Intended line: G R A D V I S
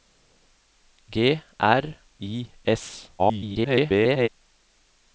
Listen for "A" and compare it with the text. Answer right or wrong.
wrong